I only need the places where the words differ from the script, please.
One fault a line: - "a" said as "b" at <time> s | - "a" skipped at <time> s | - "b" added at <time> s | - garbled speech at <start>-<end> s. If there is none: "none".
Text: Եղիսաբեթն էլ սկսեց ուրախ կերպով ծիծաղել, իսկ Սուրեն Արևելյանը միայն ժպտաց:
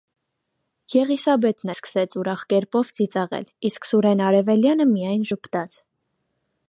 - "էլ" skipped at 1.7 s